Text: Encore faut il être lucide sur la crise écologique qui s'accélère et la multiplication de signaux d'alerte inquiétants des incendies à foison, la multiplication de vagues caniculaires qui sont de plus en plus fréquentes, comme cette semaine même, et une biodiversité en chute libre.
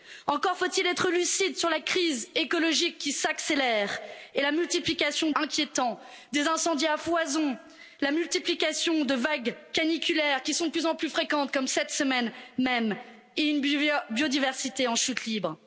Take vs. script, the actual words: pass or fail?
fail